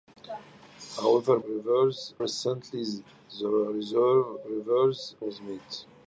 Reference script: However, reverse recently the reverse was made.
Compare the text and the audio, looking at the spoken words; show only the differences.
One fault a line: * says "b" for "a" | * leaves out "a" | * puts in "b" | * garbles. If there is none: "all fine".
all fine